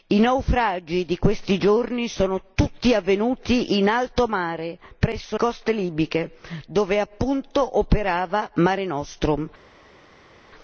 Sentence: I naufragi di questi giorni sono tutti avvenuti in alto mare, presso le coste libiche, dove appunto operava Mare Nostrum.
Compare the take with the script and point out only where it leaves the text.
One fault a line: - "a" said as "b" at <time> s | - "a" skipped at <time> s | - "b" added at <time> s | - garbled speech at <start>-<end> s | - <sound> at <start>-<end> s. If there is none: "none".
- "le" skipped at 5.4 s